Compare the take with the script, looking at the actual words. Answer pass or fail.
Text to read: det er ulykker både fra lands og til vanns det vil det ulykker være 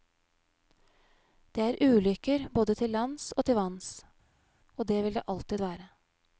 fail